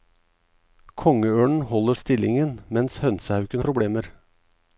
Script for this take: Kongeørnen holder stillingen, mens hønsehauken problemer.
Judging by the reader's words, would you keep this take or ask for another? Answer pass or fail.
pass